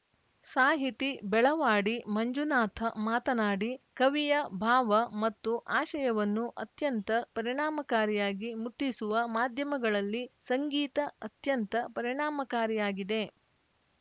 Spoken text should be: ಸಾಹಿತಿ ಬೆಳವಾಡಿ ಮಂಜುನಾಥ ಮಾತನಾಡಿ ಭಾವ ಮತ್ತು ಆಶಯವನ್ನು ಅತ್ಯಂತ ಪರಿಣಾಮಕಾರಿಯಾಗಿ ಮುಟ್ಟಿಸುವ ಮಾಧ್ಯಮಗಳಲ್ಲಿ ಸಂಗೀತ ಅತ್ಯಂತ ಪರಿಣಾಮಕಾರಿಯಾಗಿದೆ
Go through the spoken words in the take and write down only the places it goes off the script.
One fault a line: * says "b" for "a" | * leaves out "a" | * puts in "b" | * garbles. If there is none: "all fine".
* puts in "ಕವಿಯ"